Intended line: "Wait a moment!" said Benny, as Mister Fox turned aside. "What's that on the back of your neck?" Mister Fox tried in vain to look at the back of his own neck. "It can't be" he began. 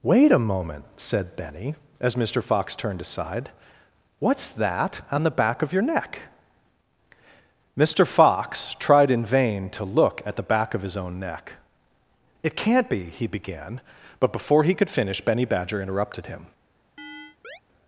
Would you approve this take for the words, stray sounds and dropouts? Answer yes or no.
no